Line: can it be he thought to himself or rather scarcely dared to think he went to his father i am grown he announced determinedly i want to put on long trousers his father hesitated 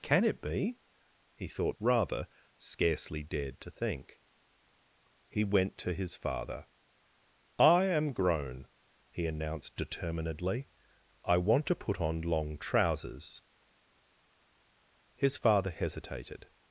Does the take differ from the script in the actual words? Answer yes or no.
yes